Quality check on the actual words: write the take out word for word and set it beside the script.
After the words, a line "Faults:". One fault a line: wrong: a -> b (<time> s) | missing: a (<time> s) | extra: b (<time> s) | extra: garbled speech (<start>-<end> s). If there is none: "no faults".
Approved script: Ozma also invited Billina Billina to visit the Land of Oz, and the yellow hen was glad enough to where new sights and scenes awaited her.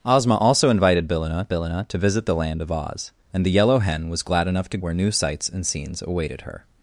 Ozma also invited Billina Billina to visit the Land of Oz, and the yellow hen was glad enough to where new sights and scenes awaited her.
Faults:
no faults